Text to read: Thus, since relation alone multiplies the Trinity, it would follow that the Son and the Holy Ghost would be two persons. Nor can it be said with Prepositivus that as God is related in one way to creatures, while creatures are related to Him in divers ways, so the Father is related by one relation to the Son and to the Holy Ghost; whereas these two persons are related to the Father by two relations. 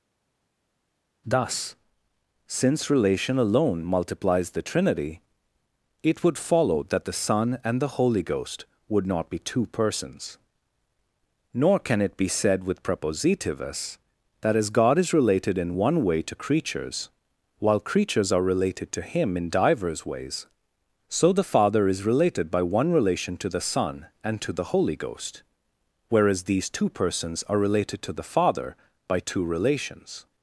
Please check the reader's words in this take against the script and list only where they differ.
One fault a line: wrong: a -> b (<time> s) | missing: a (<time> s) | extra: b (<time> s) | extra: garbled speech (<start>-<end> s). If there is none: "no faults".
extra: not (9.1 s)